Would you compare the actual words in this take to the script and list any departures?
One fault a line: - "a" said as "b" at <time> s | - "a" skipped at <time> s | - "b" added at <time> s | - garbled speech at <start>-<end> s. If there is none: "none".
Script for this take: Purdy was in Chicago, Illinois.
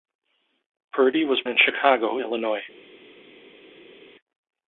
none